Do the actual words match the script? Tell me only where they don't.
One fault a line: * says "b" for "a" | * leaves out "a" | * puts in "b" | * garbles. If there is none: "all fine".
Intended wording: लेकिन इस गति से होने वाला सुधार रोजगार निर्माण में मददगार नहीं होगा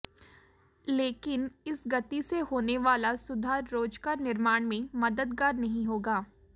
all fine